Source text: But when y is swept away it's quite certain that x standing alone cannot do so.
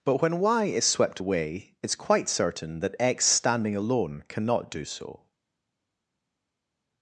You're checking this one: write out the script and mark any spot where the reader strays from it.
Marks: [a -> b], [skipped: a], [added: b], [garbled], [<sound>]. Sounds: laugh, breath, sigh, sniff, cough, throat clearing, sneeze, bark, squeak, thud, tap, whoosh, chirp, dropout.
But when y is swept away it's quite certain that x standing alone cannot do so.